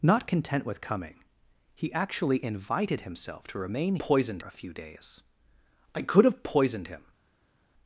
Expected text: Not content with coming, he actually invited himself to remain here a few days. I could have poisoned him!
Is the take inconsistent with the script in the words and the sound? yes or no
yes